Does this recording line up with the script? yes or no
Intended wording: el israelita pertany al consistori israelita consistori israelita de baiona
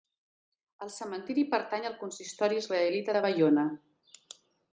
no